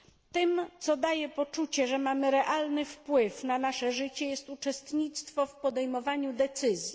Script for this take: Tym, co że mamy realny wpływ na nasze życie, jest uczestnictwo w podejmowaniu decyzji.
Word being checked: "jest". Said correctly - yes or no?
yes